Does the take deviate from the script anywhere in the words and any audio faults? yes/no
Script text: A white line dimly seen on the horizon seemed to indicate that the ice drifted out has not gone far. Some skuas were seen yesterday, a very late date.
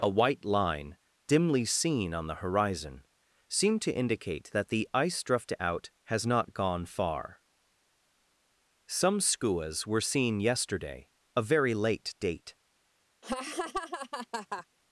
yes